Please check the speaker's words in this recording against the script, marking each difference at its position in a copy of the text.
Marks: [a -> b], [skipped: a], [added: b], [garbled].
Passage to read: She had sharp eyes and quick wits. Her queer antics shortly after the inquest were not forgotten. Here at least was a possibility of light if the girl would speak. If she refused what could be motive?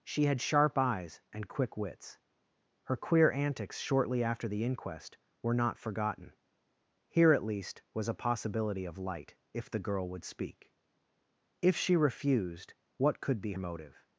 She had sharp eyes and quick wits. Her queer antics shortly after the inquest were not forgotten. Here at least was a possibility of light if the girl would speak. If she refused what could be motive?